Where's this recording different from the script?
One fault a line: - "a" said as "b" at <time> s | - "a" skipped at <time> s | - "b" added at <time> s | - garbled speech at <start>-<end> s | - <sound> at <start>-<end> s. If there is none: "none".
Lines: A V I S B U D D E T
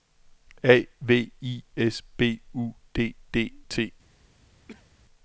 - "E" skipped at 3.5 s
- cough at 4.7-4.9 s